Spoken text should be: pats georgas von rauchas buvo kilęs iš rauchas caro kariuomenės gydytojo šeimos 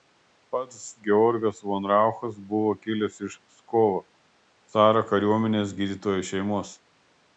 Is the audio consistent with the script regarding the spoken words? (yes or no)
no